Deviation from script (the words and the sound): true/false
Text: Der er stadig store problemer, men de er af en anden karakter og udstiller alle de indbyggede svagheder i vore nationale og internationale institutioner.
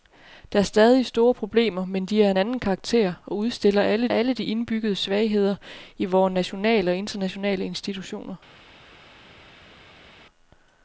true